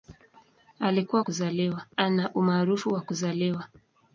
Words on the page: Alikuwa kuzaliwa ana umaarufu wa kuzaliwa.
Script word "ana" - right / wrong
right